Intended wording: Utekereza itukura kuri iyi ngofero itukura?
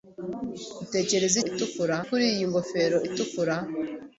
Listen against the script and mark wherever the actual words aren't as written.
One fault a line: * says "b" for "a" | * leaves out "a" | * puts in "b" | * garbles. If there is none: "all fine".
all fine